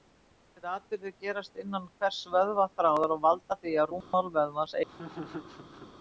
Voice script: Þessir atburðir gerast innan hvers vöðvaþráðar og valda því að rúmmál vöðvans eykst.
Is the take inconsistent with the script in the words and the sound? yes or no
yes